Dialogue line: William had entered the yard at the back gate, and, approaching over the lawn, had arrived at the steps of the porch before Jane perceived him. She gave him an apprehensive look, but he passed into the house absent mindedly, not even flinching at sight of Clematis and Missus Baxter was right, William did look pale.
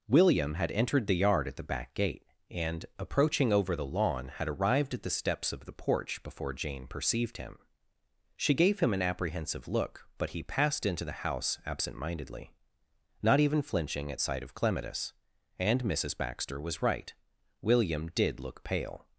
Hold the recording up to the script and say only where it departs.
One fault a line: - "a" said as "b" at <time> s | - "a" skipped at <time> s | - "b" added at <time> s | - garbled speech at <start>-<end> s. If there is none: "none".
none